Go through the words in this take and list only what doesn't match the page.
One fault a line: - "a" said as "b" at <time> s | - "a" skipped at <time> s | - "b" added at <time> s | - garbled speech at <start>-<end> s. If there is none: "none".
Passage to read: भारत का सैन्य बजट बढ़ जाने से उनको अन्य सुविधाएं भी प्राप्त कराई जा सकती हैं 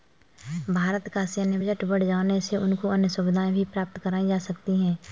none